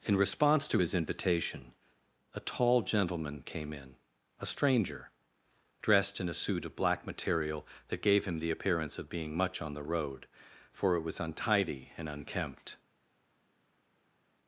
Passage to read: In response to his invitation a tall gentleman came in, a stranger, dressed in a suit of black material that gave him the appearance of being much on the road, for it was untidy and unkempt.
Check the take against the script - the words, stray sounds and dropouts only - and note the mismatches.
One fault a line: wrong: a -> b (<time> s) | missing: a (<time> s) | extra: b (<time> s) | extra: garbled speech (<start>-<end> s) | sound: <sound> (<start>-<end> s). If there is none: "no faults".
no faults